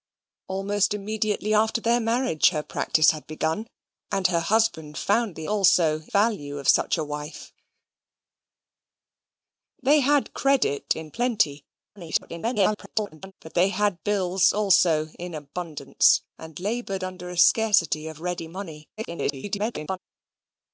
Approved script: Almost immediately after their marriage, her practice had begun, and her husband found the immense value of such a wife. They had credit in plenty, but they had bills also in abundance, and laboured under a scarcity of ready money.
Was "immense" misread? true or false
true